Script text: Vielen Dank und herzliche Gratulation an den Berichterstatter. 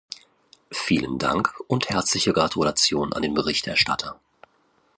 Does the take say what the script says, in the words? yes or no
yes